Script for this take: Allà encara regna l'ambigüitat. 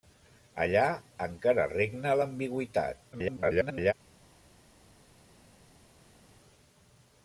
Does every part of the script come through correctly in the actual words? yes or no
no